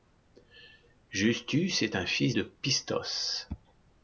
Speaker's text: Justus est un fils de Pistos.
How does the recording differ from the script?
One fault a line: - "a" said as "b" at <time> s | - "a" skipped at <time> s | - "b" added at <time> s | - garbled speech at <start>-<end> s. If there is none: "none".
none